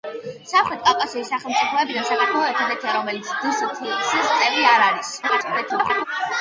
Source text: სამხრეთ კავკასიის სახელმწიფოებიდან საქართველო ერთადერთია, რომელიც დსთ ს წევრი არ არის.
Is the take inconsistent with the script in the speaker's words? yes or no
yes